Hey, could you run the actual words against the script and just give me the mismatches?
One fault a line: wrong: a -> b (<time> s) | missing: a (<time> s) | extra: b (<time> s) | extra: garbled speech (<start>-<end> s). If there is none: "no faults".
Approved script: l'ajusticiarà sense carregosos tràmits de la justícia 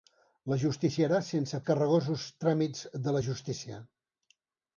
no faults